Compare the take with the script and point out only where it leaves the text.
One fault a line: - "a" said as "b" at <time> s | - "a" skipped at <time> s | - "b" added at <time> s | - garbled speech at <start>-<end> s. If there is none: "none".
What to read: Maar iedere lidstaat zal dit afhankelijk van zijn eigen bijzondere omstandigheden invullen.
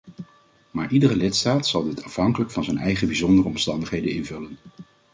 none